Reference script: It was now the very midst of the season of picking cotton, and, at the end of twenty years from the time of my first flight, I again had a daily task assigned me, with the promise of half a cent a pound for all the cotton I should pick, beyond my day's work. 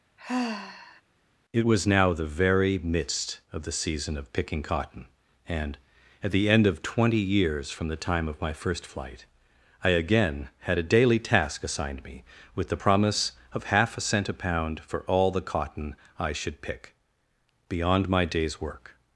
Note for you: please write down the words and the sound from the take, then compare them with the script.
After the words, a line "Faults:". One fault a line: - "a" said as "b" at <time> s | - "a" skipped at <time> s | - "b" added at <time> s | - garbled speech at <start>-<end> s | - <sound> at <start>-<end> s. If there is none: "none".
It was now the very midst of the season of picking cotton, and, at the end of twenty years from the time of my first flight, I again had a daily task assigned me, with the promise of half a cent a pound for all the cotton I should pick, beyond my day's work.
Faults:
- sigh at 0.2-1.0 s